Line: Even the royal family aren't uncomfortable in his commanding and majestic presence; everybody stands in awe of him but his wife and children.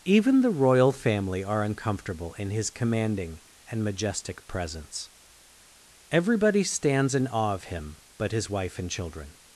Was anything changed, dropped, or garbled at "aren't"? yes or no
yes